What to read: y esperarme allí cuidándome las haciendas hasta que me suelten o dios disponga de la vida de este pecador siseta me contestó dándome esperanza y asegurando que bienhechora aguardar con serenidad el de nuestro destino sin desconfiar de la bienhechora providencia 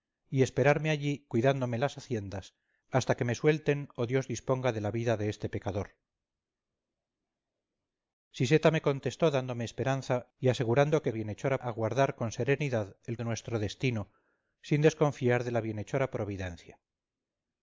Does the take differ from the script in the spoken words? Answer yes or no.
no